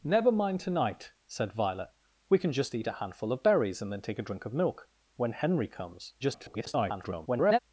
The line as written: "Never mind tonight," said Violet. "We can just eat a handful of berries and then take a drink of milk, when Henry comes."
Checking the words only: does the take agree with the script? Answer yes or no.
no